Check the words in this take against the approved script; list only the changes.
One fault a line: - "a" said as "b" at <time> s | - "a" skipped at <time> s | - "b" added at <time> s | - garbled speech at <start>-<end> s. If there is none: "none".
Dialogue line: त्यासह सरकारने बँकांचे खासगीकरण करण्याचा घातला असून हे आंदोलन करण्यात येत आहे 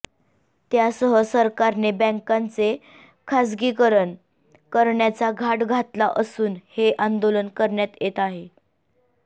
- "घाट" added at 5.3 s